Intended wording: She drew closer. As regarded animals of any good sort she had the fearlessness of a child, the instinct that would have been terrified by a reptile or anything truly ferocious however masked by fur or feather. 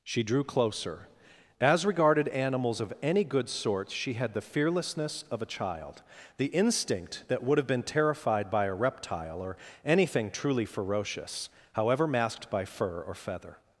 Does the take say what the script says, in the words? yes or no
yes